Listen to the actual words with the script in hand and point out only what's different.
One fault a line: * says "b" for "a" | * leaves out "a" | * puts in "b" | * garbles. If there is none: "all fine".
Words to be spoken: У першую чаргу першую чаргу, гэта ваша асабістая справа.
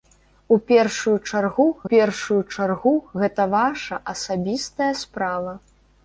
all fine